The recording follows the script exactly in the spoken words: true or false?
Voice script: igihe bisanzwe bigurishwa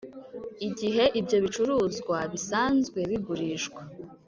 false